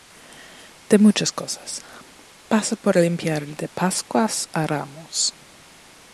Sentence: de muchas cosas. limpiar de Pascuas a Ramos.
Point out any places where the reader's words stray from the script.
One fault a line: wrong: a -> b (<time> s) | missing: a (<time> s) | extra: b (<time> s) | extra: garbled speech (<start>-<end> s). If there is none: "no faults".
extra: pasa por (2.5 s)